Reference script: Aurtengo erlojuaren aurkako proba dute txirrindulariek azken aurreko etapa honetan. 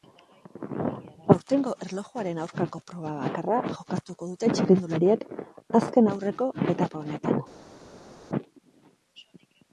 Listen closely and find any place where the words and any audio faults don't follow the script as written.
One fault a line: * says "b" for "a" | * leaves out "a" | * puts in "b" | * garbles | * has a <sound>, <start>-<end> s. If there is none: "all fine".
* puts in "bakarra jokatuko"